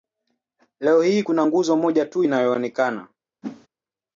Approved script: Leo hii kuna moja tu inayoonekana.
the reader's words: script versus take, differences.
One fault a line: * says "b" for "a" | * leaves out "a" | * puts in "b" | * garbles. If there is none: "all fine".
* puts in "nguzo"